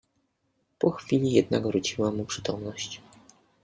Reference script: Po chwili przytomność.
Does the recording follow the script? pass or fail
fail